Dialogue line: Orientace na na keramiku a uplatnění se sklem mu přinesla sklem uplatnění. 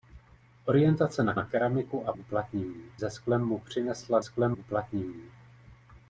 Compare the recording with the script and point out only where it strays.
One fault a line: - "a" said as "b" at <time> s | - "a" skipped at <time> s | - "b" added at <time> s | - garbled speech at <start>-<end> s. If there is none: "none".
none